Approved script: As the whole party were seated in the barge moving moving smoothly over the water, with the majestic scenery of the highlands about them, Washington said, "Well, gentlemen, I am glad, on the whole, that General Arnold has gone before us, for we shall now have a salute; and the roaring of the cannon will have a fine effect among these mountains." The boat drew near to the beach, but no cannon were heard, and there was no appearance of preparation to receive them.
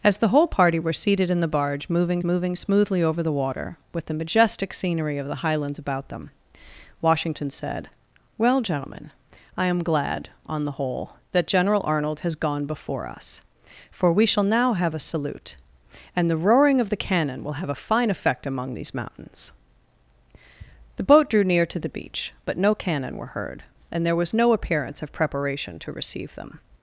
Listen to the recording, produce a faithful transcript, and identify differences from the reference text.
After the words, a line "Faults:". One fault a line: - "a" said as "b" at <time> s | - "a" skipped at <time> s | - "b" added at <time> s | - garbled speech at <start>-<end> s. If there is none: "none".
As the whole party were seated in the barge moving moving smoothly over the water, with the majestic scenery of the highlands about them, Washington said, "Well, gentlemen, I am glad, on the whole, that General Arnold has gone before us, for we shall now have a salute; and the roaring of the cannon will have a fine effect among these mountains." The boat drew near to the beach, but no cannon were heard, and there was no appearance of preparation to receive them.
Faults:
none